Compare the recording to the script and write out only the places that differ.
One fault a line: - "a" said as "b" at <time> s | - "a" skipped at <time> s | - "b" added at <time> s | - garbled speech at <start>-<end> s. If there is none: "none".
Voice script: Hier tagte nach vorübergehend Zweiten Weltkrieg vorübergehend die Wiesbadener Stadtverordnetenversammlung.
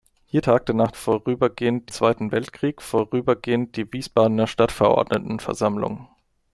none